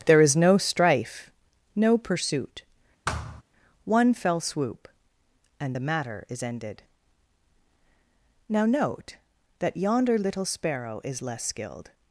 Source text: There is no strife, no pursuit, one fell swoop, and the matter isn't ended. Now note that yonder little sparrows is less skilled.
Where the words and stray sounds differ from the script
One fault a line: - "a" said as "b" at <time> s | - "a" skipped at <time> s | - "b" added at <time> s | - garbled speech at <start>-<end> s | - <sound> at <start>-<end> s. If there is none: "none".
- thud at 3.1-3.4 s
- "isn't" said as "is" at 6.3 s
- "sparrows" said as "sparrow" at 10.5 s